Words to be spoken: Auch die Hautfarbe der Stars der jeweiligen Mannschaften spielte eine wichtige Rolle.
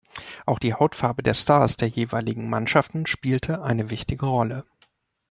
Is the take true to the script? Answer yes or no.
yes